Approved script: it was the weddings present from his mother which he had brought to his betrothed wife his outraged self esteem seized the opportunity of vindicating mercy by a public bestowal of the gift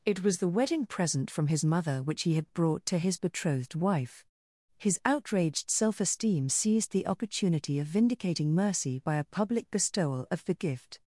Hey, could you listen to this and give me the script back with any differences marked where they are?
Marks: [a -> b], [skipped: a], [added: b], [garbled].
it was the [weddings -> wedding] present from his mother which he had brought to his betrothed wife his outraged self esteem seized the opportunity of vindicating mercy by a public bestowal of the gift